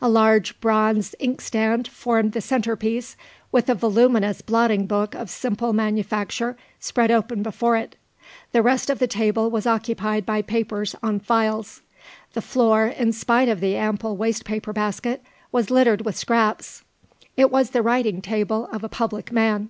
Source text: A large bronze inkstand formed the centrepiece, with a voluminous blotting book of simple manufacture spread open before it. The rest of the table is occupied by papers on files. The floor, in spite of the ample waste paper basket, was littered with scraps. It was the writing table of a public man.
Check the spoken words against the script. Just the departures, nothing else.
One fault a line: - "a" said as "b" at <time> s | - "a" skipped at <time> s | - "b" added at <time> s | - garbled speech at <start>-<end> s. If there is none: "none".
- "is" said as "was" at 9.5 s